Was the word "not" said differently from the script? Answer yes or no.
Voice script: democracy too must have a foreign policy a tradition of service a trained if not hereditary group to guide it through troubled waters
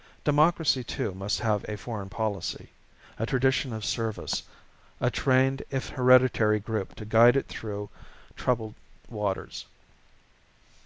yes